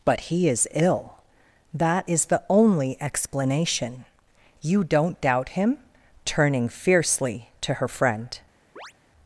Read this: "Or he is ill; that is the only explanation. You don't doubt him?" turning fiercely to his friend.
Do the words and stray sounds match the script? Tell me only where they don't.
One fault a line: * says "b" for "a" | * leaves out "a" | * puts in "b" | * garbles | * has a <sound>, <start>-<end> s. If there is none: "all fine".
* says "But" for "Or"
* says "her" for "his"
* has a chirp, 8.8-8.9 s